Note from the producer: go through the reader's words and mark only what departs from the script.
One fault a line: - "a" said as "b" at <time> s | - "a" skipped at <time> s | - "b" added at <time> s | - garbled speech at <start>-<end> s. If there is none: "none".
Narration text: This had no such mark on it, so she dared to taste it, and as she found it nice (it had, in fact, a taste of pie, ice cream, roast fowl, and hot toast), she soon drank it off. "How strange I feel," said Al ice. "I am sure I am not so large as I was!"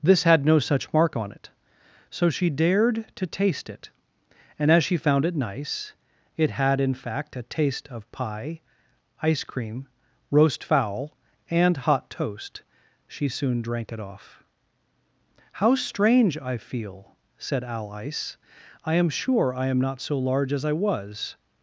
none